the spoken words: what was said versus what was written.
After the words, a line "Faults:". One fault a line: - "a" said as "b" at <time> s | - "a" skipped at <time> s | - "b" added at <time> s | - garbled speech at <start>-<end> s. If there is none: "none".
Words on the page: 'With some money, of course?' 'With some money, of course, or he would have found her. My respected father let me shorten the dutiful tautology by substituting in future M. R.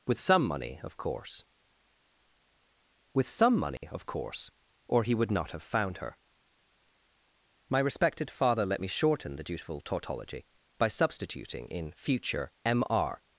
'With some money, of course?' 'With some money, of course, or he would not have found her. My respected father let me shorten the dutiful tautology by substituting in future M. R.
Faults:
- "not" added at 5.3 s